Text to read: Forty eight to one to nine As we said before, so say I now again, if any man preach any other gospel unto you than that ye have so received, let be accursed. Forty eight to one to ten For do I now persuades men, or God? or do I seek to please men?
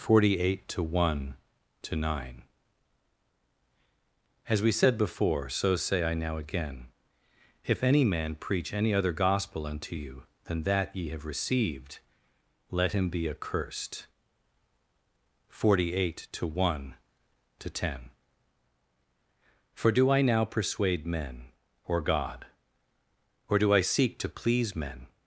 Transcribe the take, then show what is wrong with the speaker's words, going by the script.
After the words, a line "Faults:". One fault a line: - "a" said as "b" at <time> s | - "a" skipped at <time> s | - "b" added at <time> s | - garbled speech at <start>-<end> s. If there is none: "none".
Forty eight to one to nine As we said before, so say I now again, if any man preach any other gospel unto you than that ye have received, let him be accursed. Forty eight to one to ten For do I now persuade men, or God? or do I seek to please men?
Faults:
- "so" skipped at 11.3 s
- "him" added at 12.9 s
- "persuades" said as "persuade" at 20.5 s